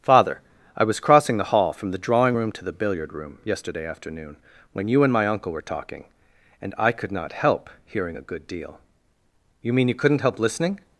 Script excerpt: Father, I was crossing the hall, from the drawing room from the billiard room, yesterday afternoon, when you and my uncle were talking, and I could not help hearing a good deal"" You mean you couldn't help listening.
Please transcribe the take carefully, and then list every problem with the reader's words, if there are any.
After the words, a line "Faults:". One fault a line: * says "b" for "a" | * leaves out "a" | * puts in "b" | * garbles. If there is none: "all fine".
Father, I was crossing the hall, from the drawing room to the billiard room, yesterday afternoon, when you and my uncle were talking, and I could not help hearing a good deal"" You mean you couldn't help listening.
Faults:
* says "to" for "from"